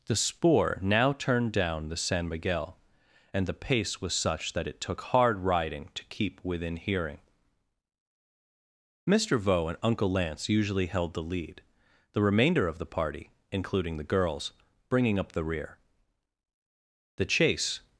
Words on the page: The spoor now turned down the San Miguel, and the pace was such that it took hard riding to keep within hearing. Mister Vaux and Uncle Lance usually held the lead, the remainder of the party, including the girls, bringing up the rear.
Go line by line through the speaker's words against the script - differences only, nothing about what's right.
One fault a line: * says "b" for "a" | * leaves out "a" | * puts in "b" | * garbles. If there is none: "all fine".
* puts in "The chase"